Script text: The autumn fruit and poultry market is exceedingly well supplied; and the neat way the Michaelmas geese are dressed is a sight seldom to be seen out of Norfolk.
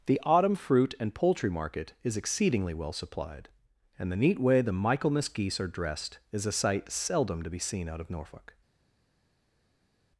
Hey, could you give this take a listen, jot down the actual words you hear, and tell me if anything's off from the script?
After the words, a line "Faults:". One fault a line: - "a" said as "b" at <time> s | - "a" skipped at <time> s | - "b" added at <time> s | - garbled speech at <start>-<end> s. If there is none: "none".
The autumn fruit and poultry market is exceedingly well supplied; and the neat way the Michaelmas geese are dressed is a sight seldom to be seen out of Norfolk.
Faults:
none